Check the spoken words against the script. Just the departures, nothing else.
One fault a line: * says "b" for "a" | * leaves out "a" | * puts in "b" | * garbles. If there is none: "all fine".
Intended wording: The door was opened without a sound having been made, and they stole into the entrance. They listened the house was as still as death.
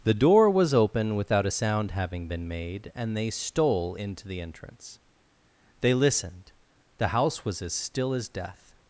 * says "open" for "opened"